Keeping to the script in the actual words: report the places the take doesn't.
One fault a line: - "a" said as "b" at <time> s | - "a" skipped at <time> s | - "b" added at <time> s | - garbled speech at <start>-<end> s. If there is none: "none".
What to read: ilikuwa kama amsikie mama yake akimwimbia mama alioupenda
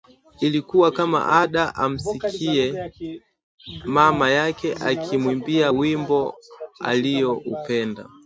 - "ada" added at 1.4 s
- "mama" said as "wimbo" at 5.7 s